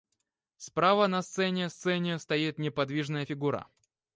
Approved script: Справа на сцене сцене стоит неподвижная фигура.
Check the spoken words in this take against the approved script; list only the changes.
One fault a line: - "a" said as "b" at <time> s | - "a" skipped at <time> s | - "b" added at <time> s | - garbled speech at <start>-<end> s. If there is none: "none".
none